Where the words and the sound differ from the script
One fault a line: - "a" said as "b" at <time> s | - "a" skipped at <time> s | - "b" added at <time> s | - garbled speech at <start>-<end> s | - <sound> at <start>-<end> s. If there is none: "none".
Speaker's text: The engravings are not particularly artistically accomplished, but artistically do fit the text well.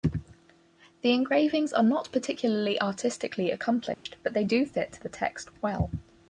- dropout at 3.9-4.1 s
- "artistically" said as "they" at 4.3 s